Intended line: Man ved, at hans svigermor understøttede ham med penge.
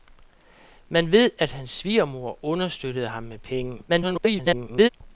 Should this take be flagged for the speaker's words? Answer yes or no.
yes